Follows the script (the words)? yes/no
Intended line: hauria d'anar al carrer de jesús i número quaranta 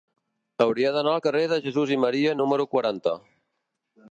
no